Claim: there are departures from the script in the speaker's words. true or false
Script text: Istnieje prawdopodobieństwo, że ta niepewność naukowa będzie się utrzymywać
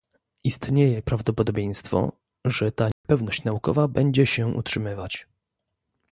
false